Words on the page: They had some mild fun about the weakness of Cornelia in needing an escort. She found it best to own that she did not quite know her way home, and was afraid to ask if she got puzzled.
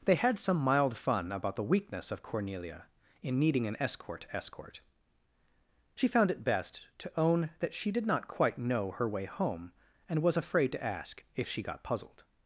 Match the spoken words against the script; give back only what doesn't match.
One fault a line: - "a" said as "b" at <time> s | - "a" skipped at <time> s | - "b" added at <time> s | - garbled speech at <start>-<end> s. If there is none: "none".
- "escort" added at 4.3 s